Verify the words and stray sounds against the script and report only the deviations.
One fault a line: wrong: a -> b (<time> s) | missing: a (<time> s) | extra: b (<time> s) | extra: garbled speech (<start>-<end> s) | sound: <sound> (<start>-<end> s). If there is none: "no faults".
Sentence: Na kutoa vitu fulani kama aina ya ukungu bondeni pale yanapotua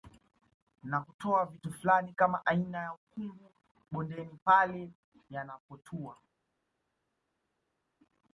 no faults